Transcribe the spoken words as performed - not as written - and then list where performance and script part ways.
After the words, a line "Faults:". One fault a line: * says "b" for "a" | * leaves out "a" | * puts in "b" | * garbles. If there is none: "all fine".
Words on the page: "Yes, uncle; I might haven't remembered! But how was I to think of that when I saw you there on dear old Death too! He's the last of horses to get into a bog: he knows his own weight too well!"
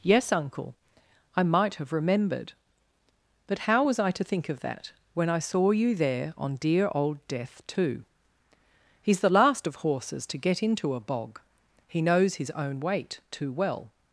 "Yes, uncle; I might have remembered! But how was I to think of that when I saw you there on dear old Death too! He's the last of horses to get into a bog: he knows his own weight too well!"
Faults:
* says "have" for "haven't"